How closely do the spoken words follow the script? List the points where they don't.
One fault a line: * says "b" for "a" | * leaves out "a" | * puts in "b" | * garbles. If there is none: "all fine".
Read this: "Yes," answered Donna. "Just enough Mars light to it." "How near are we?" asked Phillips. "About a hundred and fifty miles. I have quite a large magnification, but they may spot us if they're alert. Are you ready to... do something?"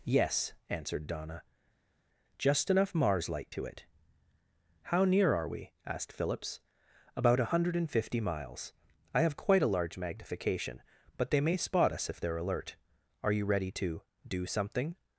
all fine